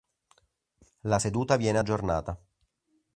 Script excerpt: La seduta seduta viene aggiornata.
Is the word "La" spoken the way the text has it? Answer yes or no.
yes